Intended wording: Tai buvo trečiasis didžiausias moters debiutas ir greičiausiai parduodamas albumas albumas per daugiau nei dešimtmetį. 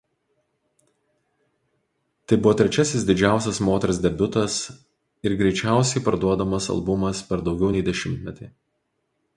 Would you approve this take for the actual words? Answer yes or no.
no